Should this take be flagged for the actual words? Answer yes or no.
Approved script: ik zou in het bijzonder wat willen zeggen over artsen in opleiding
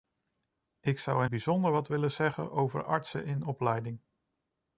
yes